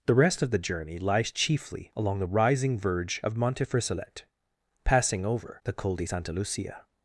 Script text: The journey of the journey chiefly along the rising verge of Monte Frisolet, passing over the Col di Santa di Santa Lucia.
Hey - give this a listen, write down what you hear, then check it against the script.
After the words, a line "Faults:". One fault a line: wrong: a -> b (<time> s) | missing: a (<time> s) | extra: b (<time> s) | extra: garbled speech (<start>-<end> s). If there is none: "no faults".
The rest of the journey lies chiefly along the rising verge of Monte Frisolet, passing over the Col di Santa Lucia.
Faults:
wrong: journey -> rest (0.1 s)
extra: lies (1.0 s)
missing: di Santa (6.3 s)